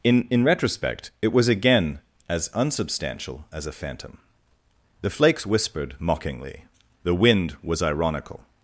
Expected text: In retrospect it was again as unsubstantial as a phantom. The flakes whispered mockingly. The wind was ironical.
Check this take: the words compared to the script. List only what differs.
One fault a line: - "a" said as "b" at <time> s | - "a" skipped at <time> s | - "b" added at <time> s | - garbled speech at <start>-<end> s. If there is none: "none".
- "in" added at 0.3 s